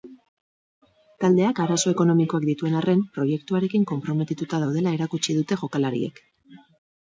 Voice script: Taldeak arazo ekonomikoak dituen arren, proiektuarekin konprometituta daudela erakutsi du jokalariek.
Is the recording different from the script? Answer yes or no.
yes